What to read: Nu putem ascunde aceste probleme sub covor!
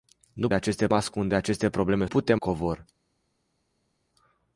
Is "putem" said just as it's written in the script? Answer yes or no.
no